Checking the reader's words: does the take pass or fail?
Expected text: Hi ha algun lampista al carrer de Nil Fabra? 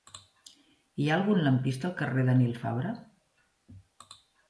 pass